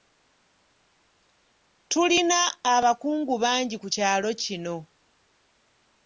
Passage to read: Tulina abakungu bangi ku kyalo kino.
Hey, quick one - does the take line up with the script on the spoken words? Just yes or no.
yes